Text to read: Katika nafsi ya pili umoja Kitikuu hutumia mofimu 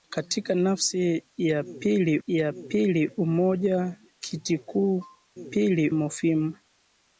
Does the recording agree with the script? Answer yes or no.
no